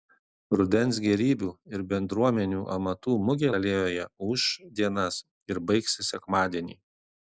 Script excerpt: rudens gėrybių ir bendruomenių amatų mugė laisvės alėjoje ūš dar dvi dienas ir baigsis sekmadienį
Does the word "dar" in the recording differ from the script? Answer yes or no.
yes